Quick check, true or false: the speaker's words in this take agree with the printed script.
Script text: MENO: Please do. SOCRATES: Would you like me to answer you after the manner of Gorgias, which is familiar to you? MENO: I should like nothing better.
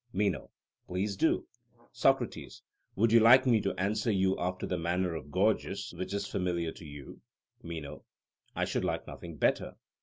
true